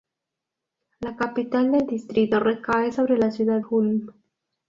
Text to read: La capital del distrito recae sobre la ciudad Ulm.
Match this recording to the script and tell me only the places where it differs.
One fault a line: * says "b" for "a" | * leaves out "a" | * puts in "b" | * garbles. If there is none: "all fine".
all fine